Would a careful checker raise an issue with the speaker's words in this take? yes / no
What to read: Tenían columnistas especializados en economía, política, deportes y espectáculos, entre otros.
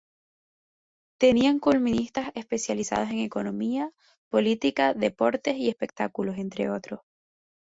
no